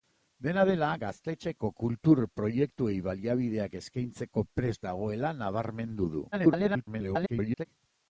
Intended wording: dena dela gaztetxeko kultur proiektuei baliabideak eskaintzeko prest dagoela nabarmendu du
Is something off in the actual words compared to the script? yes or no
yes